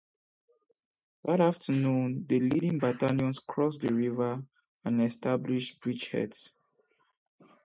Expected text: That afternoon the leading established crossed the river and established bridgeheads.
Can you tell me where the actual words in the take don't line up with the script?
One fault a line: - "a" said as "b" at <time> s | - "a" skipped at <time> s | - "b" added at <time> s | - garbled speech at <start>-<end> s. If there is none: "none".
- "established" said as "battalions" at 2.8 s